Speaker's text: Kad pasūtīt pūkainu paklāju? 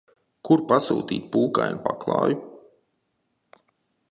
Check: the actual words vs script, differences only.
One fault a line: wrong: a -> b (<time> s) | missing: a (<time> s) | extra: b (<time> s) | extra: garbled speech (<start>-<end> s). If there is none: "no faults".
wrong: Kad -> Kur (0.5 s)